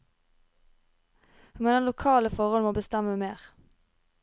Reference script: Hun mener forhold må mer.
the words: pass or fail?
fail